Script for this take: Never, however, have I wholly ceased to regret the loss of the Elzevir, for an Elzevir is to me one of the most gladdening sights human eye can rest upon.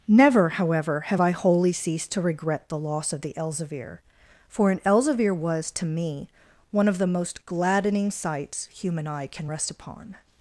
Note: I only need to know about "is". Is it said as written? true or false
false